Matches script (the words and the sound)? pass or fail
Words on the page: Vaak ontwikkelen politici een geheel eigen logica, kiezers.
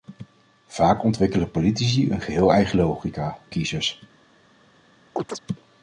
fail